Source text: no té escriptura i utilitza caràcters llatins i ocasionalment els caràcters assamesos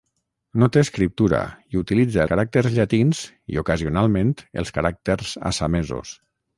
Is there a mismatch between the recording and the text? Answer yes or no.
no